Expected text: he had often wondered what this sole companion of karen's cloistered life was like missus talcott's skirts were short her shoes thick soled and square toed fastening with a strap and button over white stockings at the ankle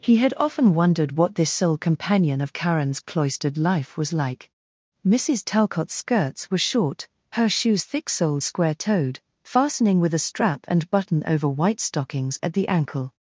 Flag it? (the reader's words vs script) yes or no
yes